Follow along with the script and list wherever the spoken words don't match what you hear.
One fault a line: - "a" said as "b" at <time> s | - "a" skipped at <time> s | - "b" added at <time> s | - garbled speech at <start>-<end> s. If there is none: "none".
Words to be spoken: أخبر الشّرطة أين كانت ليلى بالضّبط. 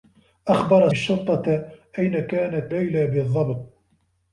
none